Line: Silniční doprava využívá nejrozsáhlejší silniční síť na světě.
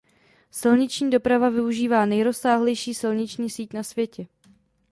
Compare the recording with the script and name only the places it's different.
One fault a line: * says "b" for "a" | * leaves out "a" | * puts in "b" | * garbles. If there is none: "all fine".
all fine